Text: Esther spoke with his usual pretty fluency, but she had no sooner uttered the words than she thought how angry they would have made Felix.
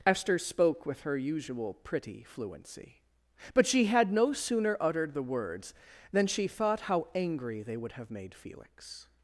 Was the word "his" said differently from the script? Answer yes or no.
yes